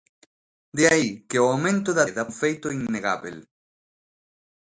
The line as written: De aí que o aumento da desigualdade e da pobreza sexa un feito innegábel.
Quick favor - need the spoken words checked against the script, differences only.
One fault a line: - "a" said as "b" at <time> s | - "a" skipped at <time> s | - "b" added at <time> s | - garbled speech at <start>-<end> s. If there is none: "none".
- "desigualdade" skipped at 2.0 s
- "pobreza sexa" skipped at 2.3 s